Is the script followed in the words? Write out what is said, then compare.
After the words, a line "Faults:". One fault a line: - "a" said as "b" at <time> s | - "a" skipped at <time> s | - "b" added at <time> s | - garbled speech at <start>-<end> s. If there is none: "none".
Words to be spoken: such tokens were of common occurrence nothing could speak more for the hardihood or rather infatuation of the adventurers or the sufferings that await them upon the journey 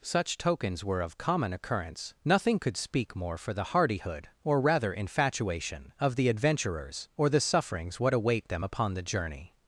such tokens were of common occurrence nothing could speak more for the hardihood or rather infatuation of the adventurers or the sufferings what await them upon the journey
Faults:
- "that" said as "what" at 8.0 s